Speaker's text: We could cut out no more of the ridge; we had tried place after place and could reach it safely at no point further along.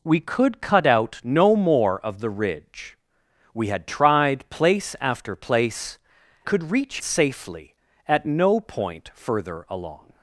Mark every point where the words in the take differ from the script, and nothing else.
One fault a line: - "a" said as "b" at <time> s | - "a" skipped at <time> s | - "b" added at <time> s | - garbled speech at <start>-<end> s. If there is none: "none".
- "and" skipped at 6.0 s
- "it" skipped at 7.0 s